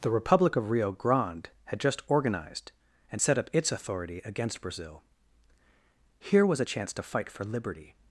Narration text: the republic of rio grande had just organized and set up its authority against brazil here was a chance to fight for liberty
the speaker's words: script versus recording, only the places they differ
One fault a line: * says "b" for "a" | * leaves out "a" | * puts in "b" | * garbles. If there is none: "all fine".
all fine